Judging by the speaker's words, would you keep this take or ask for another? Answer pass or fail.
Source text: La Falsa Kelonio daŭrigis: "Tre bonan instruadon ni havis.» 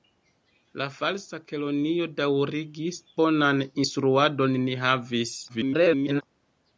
fail